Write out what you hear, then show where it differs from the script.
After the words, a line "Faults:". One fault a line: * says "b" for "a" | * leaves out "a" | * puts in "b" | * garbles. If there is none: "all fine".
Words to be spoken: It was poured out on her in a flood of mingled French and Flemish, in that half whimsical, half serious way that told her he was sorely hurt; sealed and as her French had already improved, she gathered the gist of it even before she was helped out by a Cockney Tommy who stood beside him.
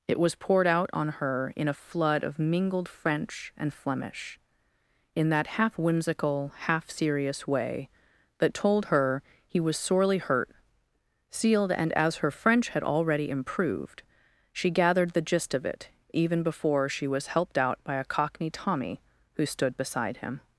It was poured out on her in a flood of mingled French and Flemish, in that half whimsical, half serious way that told her he was sorely hurt; sealed and as her French had already improved, she gathered the gist of it even before she was helped out by a Cockney Tommy who stood beside him.
Faults:
all fine